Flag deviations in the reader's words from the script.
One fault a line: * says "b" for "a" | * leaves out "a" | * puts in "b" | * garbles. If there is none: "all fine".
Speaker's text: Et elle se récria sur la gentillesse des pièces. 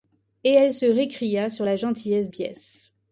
* leaves out "des"